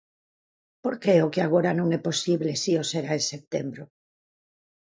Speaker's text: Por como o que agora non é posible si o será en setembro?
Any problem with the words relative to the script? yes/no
yes